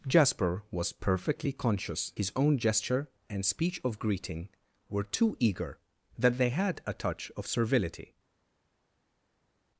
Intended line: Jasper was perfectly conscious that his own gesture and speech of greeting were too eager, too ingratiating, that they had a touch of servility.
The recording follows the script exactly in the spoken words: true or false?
false